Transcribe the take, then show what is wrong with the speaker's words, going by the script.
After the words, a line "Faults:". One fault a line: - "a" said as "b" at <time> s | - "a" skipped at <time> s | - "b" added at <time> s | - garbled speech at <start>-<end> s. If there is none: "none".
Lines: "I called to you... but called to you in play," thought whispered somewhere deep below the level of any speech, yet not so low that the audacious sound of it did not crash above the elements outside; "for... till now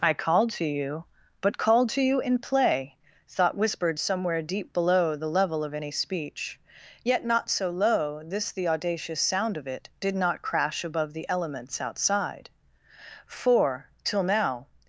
"I called to you... but called to you in play," thought whispered somewhere deep below the level of any speech, yet not so low this the audacious sound of it did not crash above the elements outside; "for... till now
Faults:
- "that" said as "this" at 8.2 s